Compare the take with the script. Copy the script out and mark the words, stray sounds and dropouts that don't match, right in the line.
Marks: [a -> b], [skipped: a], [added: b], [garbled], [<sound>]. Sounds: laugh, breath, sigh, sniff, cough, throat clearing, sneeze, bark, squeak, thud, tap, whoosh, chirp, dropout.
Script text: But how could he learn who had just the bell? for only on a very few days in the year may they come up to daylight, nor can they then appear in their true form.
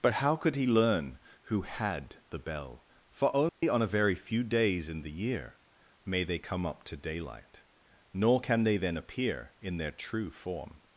But how could he learn who had [skipped: just] the bell? for only [dropout] on a very few days in the year may they come up to daylight, nor can they then appear in their true form.